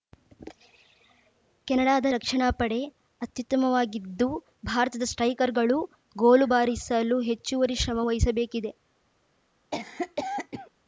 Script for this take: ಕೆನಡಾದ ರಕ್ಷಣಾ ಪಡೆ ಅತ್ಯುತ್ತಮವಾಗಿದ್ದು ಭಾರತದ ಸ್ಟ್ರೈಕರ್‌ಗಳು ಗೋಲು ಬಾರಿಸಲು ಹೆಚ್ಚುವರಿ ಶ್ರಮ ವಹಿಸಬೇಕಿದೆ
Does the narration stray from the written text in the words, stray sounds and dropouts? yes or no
yes